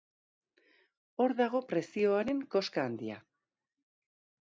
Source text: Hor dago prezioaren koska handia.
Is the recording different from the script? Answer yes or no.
no